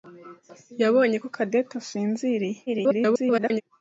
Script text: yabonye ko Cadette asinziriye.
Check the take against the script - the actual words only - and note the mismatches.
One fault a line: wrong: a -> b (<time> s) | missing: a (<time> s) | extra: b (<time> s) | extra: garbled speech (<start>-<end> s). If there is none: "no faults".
extra: garbled speech (2.7-3.6 s)